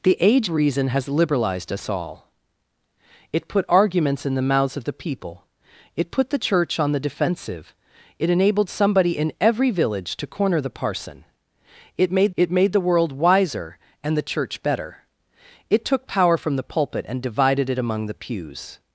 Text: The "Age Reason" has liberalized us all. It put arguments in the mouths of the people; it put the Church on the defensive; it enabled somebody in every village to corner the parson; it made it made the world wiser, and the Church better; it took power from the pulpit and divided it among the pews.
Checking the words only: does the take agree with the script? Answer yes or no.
yes